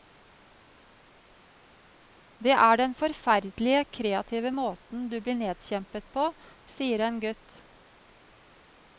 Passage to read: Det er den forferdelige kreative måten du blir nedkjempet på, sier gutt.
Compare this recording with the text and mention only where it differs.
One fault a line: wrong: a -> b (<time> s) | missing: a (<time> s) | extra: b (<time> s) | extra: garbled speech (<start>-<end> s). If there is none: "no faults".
extra: en (7.1 s)